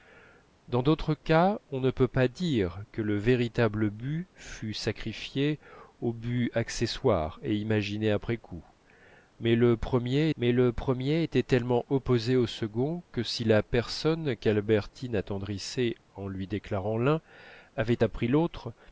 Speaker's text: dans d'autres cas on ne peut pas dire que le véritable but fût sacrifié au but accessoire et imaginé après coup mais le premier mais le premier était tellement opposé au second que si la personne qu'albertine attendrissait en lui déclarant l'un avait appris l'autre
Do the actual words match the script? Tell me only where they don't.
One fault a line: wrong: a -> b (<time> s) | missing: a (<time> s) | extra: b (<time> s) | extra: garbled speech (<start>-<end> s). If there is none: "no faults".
no faults